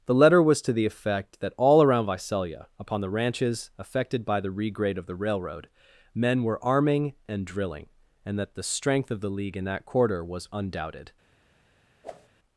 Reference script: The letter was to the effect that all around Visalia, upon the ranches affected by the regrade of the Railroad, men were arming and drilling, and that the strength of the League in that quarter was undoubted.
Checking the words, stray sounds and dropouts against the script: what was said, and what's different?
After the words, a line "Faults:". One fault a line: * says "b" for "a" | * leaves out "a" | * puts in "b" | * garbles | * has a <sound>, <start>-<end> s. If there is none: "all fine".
The letter was to the effect that all around Visalia, upon the ranches affected by the regrade of the Railroad, men were arming and drilling, and that the strength of the League in that quarter was undoubted.
Faults:
* has a whoosh, 12.0-12.3 s